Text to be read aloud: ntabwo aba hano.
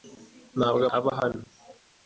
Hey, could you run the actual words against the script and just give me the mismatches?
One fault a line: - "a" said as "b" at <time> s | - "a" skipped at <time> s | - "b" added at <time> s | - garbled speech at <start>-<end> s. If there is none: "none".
none